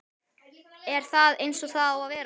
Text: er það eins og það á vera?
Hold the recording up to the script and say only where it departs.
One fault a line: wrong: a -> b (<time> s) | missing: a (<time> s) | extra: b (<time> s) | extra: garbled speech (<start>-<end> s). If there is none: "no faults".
extra: að (2.0 s)